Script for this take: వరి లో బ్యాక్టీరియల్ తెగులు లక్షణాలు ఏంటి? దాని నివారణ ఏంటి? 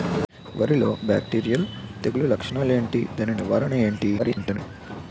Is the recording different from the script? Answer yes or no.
yes